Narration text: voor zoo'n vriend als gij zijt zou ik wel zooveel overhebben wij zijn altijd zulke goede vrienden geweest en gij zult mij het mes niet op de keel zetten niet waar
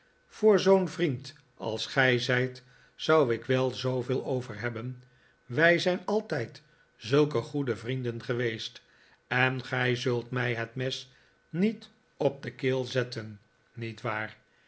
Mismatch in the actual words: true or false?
false